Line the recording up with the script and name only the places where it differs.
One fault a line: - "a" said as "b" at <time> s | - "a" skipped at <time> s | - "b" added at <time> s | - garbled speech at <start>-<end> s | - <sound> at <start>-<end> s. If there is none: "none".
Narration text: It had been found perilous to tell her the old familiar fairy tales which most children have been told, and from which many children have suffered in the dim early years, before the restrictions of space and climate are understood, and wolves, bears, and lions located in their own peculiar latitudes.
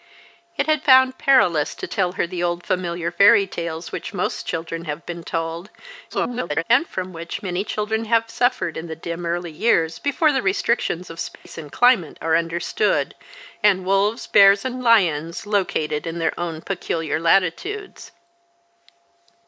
- "been" skipped at 0.8 s
- garbled speech at 6.1-6.6 s
- dropout at 11.4-11.5 s